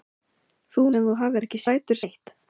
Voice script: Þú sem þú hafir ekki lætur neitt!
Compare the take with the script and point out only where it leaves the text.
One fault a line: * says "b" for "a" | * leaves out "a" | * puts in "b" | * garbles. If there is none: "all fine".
all fine